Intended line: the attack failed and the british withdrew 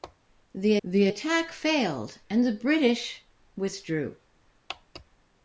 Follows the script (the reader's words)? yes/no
no